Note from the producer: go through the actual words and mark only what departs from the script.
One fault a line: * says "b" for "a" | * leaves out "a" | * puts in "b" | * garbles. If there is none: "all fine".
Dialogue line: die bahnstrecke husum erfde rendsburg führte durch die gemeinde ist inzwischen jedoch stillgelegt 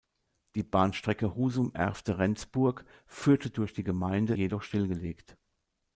* leaves out "ist inzwischen"